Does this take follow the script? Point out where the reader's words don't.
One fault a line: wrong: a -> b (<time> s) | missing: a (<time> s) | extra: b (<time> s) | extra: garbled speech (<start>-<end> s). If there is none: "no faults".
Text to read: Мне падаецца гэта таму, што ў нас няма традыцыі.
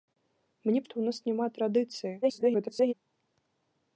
missing: падаецца гэта таму (0.8 s)
extra: garbled speech (2.2-2.9 s)